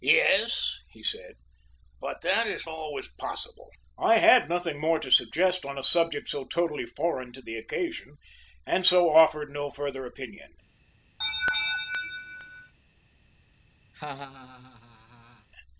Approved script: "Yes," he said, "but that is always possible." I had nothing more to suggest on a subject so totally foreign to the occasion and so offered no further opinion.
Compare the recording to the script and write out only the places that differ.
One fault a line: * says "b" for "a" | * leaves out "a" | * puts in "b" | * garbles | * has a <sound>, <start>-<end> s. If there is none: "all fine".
* has a laugh, 11.2-12.7 s
* has a laugh, 13.9-15.5 s